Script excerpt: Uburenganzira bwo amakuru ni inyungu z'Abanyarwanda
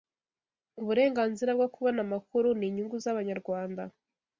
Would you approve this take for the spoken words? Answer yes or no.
no